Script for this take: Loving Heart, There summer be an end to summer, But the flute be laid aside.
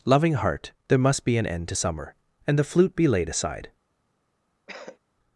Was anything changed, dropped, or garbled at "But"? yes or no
yes